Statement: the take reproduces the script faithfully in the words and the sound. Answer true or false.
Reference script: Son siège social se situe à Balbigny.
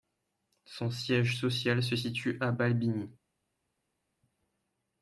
true